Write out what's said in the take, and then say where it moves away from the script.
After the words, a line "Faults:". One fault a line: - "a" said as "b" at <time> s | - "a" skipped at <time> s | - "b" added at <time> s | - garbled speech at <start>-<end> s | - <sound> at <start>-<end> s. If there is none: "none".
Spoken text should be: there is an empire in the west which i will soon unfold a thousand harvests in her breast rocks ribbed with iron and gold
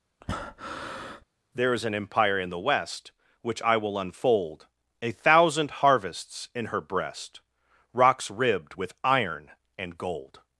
there is an empire in the west which i will unfold a thousand harvests in her breast rocks ribbed with iron and gold
Faults:
- breath at 0.2-1.2 s
- "soon" skipped at 4.0 s